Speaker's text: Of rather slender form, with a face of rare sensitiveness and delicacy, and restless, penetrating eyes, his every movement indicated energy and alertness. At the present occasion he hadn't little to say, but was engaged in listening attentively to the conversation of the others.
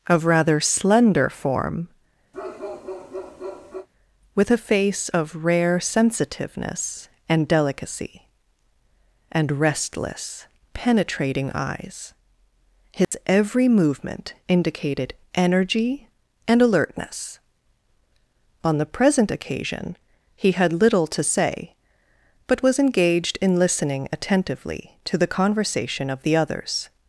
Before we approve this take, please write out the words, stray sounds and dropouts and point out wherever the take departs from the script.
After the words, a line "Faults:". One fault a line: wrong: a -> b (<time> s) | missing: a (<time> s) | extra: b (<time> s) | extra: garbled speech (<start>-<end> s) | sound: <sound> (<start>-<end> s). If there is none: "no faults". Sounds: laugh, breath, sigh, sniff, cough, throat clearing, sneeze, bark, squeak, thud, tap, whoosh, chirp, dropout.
Of rather slender form, with a face of rare sensitiveness and delicacy, and restless, penetrating eyes, his every movement indicated energy and alertness. On the present occasion he had little to say, but was engaged in listening attentively to the conversation of the others.
Faults:
sound: bark (2.3-3.9 s)
sound: dropout (13.0-13.1 s)
wrong: At -> On (18.6 s)
wrong: hadn't -> had (20.5 s)